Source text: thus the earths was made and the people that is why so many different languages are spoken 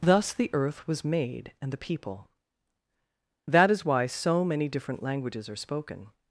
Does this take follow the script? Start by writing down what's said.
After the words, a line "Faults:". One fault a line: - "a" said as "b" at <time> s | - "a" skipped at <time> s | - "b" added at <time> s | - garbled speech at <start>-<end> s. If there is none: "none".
thus the earth was made and the people that is why so many different languages are spoken
Faults:
- "earths" said as "earth" at 0.5 s